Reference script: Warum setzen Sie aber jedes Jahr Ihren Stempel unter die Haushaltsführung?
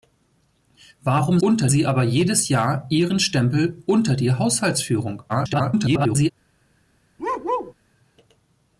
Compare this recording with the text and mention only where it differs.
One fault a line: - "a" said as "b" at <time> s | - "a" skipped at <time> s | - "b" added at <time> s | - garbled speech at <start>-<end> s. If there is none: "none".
- "setzen" said as "unter" at 1.4 s
- garbled speech at 5.3-6.3 s